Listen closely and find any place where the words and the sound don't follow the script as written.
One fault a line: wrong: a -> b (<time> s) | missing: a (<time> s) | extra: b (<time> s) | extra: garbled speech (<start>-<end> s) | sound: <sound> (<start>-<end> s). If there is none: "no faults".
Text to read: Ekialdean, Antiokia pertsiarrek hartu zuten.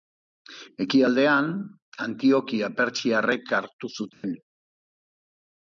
sound: dropout (4.1-4.2 s)